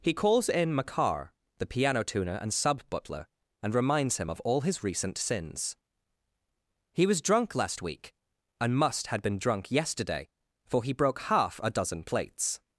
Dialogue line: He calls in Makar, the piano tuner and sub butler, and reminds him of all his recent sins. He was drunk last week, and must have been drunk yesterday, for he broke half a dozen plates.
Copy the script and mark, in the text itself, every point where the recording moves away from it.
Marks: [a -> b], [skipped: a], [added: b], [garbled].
He calls in Makar, the piano tuner and sub butler, and reminds him of all his recent sins. He was drunk last week, and must [have -> had] been drunk yesterday, for he broke half a dozen plates.